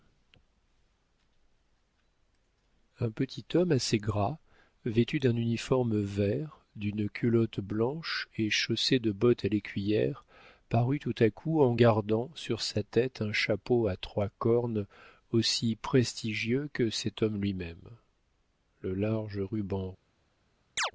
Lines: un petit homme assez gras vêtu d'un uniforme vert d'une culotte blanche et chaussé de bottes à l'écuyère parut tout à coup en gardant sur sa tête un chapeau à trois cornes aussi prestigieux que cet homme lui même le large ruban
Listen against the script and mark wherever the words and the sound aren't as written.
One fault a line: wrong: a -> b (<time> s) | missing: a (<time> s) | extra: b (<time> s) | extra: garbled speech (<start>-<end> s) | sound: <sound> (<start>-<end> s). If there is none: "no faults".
sound: chirp (20.8-20.9 s)